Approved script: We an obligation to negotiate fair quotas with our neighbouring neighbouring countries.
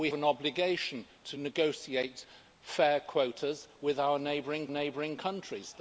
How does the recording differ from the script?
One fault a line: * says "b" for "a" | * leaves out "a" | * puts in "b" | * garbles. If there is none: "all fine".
all fine